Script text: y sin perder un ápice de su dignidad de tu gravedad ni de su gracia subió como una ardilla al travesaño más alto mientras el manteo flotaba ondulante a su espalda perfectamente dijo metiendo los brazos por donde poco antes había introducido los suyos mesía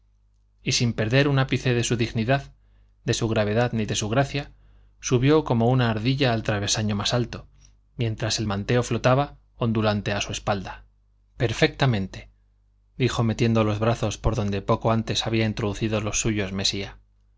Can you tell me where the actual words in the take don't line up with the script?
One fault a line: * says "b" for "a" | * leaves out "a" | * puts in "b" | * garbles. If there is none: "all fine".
* says "su" for "tu"